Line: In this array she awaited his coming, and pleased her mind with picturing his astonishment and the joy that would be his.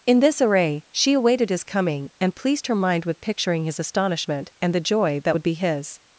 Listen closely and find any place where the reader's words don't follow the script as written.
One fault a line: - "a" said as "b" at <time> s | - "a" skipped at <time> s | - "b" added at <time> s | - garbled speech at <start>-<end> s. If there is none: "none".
none